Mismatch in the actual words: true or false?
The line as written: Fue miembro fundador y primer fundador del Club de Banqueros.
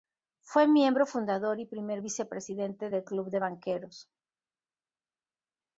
true